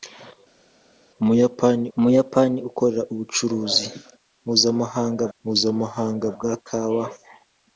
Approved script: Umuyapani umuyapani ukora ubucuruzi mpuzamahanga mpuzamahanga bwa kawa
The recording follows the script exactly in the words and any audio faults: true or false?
true